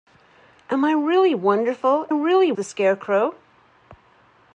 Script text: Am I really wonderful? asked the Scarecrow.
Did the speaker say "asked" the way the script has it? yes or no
no